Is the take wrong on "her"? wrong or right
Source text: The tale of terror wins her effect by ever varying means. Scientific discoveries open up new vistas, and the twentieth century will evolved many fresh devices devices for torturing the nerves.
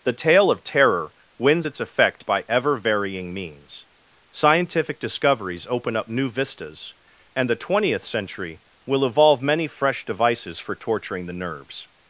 wrong